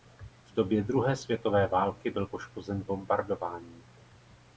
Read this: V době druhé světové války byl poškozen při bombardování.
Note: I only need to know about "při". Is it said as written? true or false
false